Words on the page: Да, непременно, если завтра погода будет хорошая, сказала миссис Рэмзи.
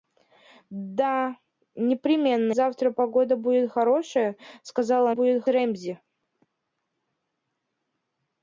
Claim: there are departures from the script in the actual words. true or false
true